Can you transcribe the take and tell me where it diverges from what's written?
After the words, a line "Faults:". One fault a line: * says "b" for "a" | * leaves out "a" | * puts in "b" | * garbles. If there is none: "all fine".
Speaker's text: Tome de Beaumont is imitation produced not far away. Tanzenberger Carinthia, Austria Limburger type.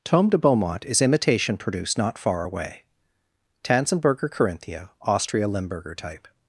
Tome de Beaumont is imitation produced not far away. Tanzenberger Carinthia, Austria Limburger type.
Faults:
all fine